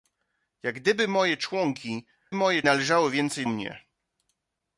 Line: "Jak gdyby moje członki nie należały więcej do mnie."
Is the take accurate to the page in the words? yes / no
no